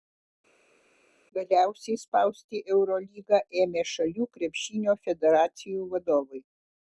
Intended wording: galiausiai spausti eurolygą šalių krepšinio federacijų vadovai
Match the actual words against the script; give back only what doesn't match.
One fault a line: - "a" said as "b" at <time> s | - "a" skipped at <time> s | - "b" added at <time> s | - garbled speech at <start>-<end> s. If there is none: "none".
- "ėmė" added at 3.6 s